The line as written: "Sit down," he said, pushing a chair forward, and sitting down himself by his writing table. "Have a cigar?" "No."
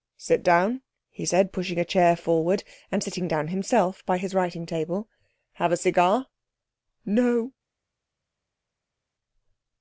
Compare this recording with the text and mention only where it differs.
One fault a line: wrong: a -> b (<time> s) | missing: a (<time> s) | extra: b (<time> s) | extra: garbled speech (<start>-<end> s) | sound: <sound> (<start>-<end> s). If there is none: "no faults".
no faults